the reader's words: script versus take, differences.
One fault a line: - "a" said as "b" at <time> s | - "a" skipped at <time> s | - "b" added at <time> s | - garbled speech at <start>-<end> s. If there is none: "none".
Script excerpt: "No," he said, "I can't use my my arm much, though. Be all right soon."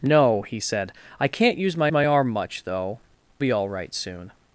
none